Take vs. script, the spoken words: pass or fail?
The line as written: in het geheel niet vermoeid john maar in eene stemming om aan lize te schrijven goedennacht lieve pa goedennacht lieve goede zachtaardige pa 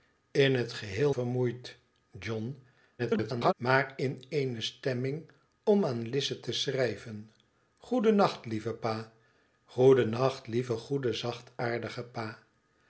fail